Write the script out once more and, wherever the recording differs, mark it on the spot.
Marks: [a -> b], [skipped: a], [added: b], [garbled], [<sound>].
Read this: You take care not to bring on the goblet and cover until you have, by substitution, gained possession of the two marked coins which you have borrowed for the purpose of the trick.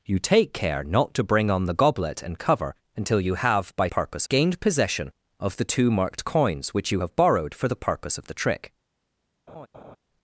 You take care not to bring on the goblet and cover until you have, by [substitution, -> purpose] gained possession of the two marked coins which you have borrowed for the purpose of the trick. [laugh]